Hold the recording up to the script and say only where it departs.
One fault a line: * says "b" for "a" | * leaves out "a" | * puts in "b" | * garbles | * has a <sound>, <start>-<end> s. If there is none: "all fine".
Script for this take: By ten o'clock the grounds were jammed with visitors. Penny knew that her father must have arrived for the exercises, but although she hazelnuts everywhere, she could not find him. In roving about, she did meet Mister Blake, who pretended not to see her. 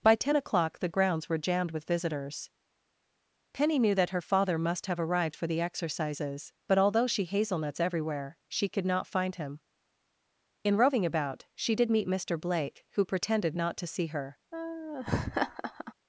* has a laugh, 14.5-15.9 s